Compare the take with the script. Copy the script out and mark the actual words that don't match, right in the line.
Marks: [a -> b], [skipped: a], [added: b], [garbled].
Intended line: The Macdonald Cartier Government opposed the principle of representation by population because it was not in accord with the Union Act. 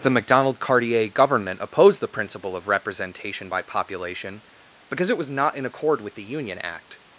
The Macdonald Cartier Government opposed the principle of representation by population because it was not in accord with the Union Act.